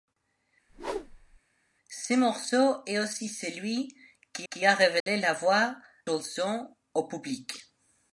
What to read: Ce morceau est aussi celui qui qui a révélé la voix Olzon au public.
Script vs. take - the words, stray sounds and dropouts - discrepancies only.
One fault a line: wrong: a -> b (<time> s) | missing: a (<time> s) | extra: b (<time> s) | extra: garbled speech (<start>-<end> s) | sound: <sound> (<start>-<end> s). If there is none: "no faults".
sound: whoosh (0.7-1.4 s)
sound: dropout (5.0-5.1 s)